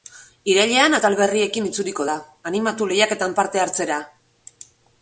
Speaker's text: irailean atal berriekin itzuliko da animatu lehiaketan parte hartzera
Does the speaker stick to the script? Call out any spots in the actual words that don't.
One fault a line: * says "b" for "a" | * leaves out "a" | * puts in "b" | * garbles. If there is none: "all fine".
all fine